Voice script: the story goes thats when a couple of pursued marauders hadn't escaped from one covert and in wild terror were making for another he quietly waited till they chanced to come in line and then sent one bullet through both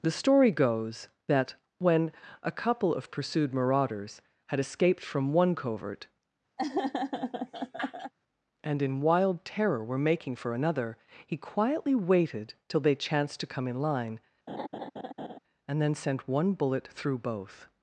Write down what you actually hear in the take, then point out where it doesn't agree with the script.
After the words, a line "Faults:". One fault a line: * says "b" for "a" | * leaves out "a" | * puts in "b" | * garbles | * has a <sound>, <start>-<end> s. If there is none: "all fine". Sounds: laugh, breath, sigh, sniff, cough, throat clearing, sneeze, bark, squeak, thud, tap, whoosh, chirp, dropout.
the story goes that when a couple of pursued marauders had escaped from one covert and in wild terror were making for another he quietly waited till they chanced to come in line and then sent one bullet through both
Faults:
* says "that" for "thats"
* says "had" for "hadn't"
* has a laugh, 6.6-8.1 s
* has a laugh, 14.5-15.4 s